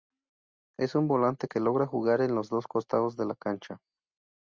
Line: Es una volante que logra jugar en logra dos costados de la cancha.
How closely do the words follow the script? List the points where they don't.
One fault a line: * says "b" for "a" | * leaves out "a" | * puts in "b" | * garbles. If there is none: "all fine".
* says "un" for "una"
* says "los" for "logra"